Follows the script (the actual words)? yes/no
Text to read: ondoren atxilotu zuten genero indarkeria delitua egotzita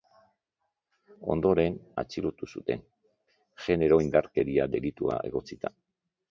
yes